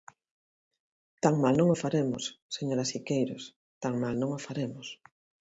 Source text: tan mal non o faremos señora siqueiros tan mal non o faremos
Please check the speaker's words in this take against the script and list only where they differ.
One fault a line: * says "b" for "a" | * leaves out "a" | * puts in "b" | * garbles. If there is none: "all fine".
all fine